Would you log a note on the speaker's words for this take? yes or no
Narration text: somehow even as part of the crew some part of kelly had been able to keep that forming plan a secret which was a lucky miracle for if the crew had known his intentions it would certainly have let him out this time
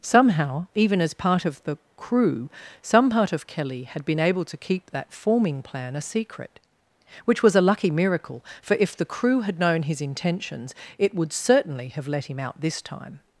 no